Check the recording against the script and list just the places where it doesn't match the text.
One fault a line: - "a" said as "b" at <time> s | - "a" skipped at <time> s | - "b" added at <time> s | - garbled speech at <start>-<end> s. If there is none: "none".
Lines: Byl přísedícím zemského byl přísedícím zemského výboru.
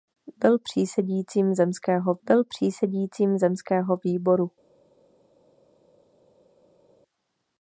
none